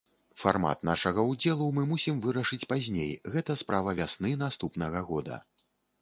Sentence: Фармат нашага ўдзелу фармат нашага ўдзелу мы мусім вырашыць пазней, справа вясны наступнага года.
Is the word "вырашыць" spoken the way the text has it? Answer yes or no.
yes